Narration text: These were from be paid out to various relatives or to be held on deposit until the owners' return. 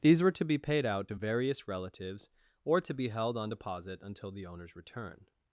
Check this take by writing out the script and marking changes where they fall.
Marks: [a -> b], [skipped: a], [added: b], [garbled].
These were [from -> to] be paid out to various relatives or to be held on deposit until the owners' return.